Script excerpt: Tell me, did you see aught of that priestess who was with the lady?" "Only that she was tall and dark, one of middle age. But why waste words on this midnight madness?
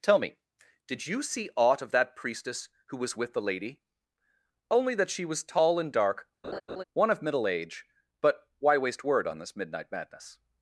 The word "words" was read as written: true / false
false